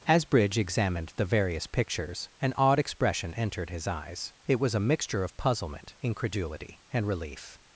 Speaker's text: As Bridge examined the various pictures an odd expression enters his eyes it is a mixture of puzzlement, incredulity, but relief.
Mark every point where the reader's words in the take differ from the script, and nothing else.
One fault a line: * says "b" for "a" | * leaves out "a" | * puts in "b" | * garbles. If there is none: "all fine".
* says "entered" for "enters"
* says "was" for "is"
* says "and" for "but"